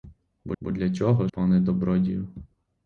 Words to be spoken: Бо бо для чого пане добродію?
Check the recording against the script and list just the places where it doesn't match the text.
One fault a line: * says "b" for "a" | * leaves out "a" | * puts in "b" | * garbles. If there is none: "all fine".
all fine